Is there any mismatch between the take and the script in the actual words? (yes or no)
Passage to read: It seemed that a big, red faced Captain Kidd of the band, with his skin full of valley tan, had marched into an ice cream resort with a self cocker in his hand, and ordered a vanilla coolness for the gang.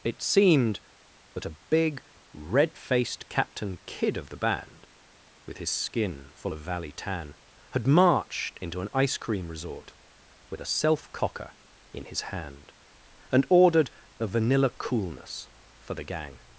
no